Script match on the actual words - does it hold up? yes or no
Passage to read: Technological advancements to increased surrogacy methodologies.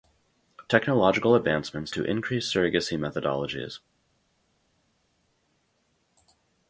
yes